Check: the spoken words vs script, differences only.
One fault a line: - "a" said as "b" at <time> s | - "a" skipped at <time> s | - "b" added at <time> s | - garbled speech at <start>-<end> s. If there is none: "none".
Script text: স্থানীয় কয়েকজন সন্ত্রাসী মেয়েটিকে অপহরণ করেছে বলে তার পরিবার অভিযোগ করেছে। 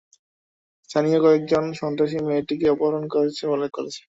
- "তার পরিবার অভিযোগ" skipped at 3.6 s